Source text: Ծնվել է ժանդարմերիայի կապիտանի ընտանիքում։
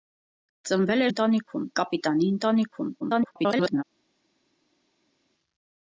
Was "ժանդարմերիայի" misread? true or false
true